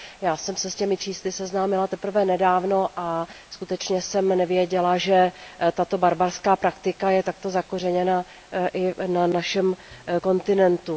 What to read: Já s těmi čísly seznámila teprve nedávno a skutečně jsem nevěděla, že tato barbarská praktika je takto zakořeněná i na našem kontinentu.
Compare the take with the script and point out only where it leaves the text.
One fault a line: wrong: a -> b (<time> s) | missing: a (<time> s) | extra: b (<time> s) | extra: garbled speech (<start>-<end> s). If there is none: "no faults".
extra: jsem se (0.4 s)